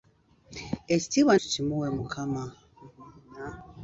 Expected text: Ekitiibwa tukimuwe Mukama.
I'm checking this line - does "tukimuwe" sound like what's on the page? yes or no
yes